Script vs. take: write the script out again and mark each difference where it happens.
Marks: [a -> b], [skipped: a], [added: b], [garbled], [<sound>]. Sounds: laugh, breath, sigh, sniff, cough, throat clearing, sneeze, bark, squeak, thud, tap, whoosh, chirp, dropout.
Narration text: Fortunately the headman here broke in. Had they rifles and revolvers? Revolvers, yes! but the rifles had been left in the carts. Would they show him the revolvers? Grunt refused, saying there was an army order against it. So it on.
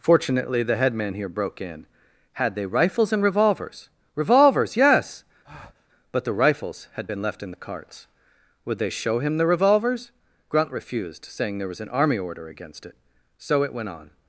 Fortunately the headman here broke in. Had they rifles and revolvers? Revolvers, yes! [breath] but the rifles had been left in the carts. Would they show him the revolvers? Grunt refused, saying there was an army order against it. So it [added: went] on.